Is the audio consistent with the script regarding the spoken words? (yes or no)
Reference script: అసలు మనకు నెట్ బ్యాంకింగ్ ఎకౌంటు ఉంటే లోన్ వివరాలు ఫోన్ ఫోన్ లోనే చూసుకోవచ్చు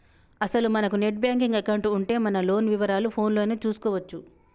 no